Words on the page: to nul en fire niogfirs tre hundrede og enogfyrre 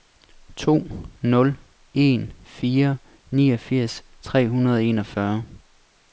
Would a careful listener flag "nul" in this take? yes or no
no